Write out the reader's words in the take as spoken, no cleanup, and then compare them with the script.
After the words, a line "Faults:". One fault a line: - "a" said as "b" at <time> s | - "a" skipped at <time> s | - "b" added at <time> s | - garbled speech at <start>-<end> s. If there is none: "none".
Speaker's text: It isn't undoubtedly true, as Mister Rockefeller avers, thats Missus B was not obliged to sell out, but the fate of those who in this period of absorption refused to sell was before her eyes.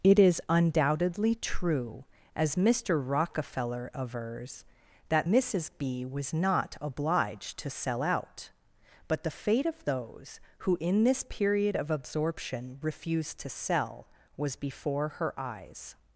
It is undoubtedly true, as Mister Rockefeller avers, that Missus B was not obliged to sell out, but the fate of those who in this period of absorption refused to sell was before her eyes.
Faults:
- "isn't" said as "is" at 0.2 s
- "thats" said as "that" at 5.1 s